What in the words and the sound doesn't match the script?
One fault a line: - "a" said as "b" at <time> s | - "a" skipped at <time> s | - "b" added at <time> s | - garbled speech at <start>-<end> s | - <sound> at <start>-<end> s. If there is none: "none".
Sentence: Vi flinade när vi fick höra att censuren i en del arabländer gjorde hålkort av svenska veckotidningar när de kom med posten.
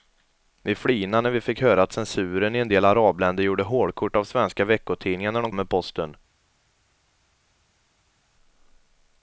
- "kom" skipped at 5.5 s